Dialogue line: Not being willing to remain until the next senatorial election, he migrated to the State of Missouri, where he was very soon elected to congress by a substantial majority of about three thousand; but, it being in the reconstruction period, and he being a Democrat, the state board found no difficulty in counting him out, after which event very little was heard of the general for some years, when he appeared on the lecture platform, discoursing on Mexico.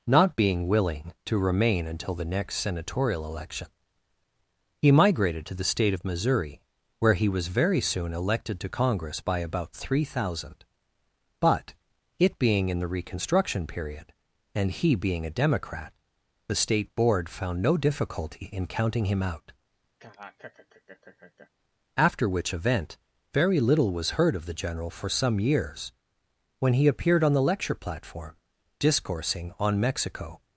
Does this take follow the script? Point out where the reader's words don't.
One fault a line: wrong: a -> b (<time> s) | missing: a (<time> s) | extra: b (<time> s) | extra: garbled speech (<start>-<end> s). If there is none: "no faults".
missing: a substantial majority of (9.4 s)